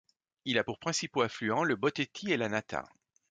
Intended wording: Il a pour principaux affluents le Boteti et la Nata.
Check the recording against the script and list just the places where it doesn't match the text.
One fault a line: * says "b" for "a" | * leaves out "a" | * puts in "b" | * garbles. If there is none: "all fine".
all fine